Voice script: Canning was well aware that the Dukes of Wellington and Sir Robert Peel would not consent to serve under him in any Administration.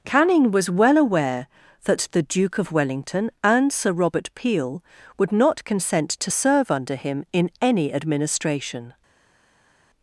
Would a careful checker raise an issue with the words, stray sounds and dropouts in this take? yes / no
yes